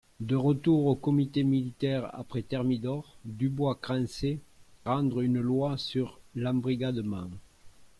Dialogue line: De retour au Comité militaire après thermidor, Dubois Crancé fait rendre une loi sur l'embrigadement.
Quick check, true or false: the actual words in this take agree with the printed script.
false